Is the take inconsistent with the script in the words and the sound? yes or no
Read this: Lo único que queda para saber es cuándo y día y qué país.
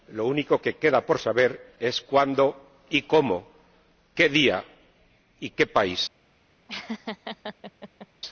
yes